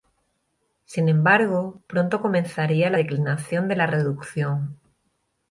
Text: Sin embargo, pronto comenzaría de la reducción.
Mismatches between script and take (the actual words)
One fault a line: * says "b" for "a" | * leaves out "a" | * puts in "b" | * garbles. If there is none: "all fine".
* puts in "la declinación"